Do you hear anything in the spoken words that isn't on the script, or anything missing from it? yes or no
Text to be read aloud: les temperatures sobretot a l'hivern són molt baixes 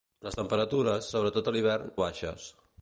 yes